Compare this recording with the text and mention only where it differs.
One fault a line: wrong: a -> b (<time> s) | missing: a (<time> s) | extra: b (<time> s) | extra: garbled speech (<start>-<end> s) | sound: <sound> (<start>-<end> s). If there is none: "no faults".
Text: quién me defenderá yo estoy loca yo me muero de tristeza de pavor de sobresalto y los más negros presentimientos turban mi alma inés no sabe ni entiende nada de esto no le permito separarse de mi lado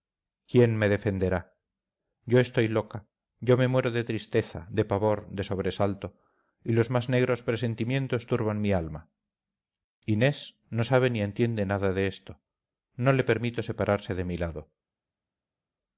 no faults